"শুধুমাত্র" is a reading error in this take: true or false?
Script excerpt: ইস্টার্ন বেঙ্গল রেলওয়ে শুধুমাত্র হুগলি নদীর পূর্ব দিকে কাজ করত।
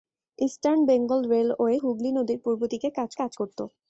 true